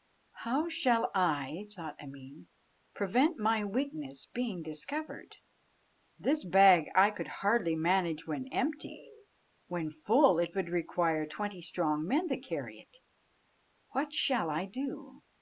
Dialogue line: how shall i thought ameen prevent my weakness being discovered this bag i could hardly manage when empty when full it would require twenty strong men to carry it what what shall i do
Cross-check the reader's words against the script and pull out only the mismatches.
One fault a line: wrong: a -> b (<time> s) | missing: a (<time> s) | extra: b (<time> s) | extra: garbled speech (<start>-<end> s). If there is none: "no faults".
missing: what (14.1 s)